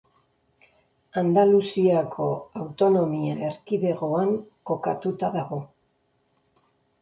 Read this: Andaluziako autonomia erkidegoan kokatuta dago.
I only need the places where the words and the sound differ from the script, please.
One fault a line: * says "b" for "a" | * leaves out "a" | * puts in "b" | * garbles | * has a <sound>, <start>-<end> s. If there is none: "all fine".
all fine